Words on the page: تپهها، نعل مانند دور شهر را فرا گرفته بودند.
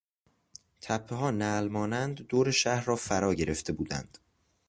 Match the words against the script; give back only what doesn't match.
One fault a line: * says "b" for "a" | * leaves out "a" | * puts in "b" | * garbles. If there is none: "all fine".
all fine